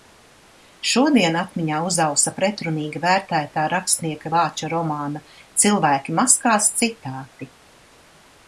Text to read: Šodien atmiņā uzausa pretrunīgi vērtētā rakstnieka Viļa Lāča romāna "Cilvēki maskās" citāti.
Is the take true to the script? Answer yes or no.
no